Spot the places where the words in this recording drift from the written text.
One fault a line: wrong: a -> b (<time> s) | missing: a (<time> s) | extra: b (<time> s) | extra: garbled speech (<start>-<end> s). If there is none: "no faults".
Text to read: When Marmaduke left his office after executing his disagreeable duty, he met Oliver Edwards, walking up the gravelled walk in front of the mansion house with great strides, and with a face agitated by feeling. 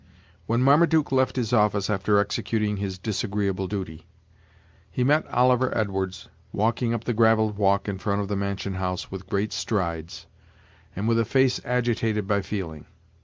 no faults